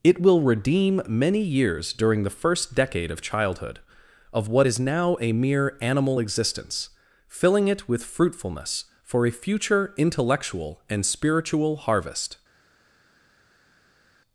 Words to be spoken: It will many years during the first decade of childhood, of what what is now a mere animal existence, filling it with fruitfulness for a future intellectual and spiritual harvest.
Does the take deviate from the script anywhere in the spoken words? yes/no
yes